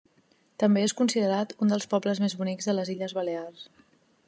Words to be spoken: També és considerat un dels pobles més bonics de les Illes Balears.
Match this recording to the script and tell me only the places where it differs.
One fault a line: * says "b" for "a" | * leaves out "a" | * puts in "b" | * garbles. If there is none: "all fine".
all fine